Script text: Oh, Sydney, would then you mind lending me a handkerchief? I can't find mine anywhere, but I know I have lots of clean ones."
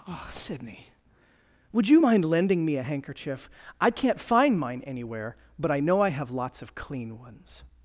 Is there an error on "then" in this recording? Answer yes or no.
yes